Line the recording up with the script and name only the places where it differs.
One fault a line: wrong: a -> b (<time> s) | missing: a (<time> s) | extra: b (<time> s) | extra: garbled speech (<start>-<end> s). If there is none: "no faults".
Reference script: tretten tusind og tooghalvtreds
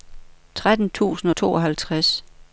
no faults